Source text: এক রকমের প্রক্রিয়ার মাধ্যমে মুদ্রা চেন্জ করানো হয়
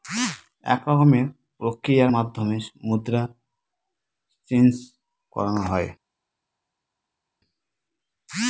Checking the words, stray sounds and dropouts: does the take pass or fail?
pass